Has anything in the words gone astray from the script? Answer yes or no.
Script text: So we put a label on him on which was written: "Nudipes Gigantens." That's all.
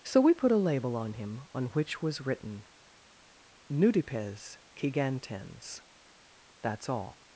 no